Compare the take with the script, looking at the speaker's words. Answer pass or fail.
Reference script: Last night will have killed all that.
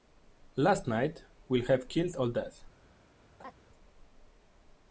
pass